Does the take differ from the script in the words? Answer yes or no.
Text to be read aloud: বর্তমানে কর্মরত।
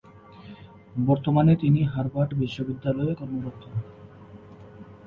yes